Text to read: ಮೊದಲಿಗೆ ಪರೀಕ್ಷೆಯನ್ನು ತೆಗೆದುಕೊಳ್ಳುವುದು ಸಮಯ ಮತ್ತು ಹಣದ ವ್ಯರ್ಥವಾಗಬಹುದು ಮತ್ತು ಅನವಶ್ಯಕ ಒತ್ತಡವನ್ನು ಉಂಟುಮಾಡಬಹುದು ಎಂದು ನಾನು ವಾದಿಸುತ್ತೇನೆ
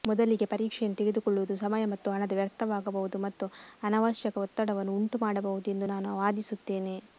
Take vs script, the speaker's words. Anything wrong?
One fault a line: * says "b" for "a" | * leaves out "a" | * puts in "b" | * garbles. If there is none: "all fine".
all fine